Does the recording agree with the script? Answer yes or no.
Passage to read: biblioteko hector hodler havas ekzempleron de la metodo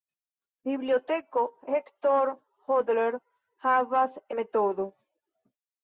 no